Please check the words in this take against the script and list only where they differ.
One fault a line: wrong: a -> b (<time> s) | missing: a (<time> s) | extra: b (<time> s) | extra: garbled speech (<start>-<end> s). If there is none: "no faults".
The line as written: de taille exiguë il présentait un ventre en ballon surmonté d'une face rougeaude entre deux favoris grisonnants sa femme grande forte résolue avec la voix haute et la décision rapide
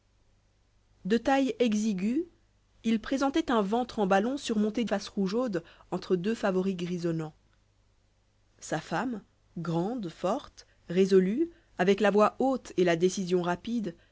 missing: d'une (4.8 s)